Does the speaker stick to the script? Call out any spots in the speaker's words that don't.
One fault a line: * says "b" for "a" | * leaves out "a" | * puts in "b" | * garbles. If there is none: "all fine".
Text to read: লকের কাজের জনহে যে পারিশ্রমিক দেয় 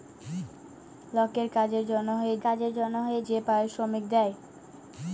* puts in "কাজের জনহে"